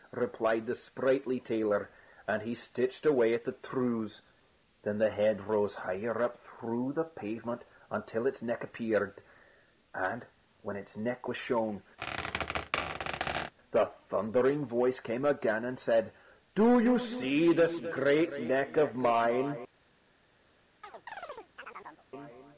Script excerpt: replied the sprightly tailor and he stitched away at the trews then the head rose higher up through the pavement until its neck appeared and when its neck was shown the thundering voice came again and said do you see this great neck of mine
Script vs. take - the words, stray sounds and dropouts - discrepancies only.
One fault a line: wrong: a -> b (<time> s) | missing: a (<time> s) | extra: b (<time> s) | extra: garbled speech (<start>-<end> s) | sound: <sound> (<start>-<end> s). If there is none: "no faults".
sound: squeak (12.0-13.5 s)
sound: chirp (20.8-22.1 s)